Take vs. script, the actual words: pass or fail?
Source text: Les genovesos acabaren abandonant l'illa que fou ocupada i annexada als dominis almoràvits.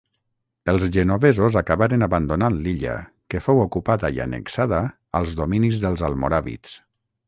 fail